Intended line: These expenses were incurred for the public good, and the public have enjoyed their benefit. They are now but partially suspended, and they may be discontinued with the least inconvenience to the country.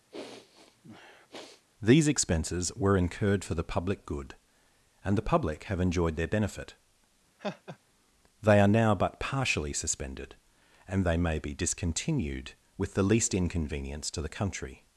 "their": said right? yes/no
yes